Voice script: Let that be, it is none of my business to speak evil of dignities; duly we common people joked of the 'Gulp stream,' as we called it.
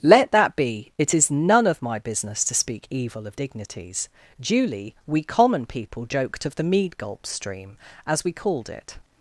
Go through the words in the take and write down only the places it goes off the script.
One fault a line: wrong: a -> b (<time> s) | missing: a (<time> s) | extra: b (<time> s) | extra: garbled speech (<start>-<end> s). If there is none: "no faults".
extra: mead (6.6 s)